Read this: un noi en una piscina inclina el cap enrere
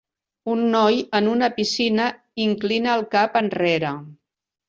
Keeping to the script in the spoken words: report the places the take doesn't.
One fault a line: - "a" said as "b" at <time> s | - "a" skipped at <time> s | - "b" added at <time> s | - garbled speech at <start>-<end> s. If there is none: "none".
none